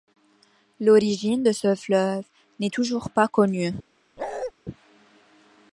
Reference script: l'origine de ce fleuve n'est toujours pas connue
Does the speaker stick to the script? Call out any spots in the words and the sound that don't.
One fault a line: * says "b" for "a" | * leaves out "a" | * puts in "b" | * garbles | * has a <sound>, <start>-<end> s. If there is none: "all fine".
* has a bark, 4.2-4.5 s